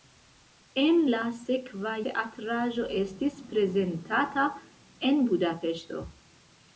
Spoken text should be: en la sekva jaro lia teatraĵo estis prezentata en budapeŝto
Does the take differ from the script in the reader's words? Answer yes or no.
yes